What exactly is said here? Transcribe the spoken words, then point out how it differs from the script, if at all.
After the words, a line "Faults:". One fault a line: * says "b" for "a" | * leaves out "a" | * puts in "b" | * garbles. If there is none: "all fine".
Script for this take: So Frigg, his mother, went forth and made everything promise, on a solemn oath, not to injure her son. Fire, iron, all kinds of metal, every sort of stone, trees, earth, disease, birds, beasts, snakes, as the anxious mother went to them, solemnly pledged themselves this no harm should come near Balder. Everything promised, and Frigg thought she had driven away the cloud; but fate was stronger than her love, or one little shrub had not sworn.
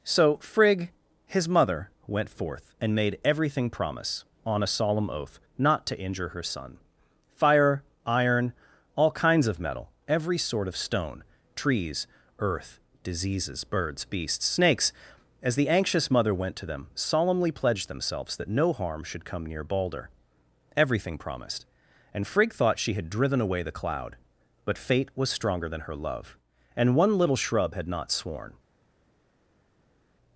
So Frigg, his mother, went forth and made everything promise, on a solemn oath, not to injure her son. Fire, iron, all kinds of metal, every sort of stone, trees, earth, diseases, birds, beasts, snakes, as the anxious mother went to them, solemnly pledged themselves that no harm should come near Balder. Everything promised, and Frigg thought she had driven away the cloud; but fate was stronger than her love, and one little shrub had not sworn.
Faults:
* says "diseases" for "disease"
* says "that" for "this"
* says "and" for "or"